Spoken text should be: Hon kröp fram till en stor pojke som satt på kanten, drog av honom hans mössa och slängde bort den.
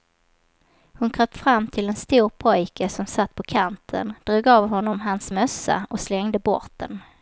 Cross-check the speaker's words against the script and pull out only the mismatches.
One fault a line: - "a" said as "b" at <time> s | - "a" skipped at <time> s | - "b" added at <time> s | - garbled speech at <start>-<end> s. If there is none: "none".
none